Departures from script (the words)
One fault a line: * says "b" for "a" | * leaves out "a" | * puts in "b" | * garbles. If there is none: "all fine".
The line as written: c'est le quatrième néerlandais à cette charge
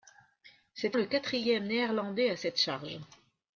all fine